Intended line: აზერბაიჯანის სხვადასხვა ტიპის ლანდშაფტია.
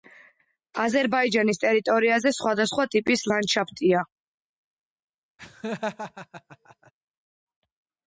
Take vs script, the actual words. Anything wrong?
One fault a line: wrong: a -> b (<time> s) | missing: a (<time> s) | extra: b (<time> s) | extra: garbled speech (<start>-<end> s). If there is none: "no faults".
extra: ტერიტორიაზე (1.6 s)